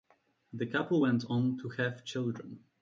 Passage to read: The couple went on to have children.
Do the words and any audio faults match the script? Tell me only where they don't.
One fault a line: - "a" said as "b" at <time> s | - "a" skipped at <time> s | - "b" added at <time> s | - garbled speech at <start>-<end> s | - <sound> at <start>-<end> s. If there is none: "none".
none